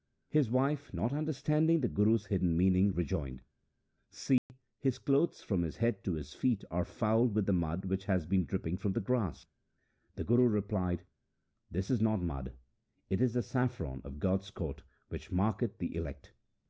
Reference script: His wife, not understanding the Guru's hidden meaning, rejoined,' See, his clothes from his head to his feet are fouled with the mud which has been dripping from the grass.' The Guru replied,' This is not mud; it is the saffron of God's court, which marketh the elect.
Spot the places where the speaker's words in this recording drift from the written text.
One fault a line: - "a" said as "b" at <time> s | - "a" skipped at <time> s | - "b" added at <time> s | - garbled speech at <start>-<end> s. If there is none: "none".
none